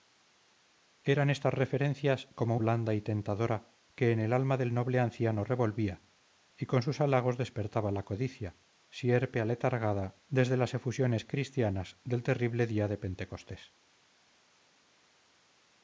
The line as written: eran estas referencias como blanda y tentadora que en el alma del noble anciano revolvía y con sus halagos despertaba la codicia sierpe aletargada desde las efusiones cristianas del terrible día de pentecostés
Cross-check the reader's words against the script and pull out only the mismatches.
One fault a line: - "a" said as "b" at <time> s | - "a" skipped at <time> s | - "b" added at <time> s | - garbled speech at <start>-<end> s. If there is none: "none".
none